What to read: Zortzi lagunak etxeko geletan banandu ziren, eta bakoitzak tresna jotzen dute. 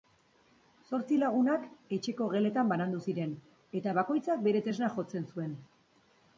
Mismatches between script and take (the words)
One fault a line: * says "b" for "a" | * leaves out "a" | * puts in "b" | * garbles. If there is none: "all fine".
* puts in "bere"
* says "zuen" for "dute"